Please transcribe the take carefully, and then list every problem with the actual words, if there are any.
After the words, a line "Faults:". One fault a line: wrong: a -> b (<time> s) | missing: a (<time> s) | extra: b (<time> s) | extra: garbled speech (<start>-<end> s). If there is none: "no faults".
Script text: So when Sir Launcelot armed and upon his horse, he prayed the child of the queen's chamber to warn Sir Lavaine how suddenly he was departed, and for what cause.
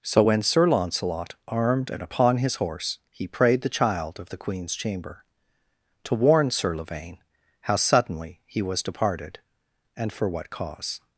So when Sir Launcelot armed and upon his horse, he prayed the child of the queen's chamber to warn Sir Lavaine how suddenly he was departed, and for what cause.
Faults:
no faults